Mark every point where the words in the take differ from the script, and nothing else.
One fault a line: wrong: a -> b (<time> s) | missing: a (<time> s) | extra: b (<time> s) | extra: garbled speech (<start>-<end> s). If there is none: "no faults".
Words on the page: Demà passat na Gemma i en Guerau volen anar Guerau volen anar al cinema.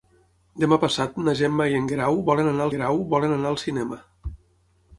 no faults